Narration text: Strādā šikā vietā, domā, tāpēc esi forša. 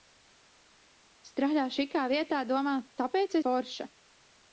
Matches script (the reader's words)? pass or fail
fail